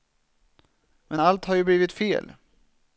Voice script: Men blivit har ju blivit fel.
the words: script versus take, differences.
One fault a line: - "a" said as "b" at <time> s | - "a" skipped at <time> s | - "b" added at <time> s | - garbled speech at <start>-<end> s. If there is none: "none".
- "blivit" said as "allt" at 1.2 s